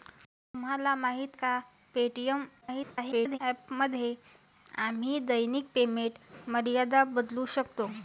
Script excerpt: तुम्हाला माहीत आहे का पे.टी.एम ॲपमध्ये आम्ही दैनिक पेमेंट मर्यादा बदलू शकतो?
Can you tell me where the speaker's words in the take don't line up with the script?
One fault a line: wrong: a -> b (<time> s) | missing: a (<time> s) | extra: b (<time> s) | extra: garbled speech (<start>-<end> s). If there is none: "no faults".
missing: आहे (1.4 s)
extra: garbled speech (2.6-3.4 s)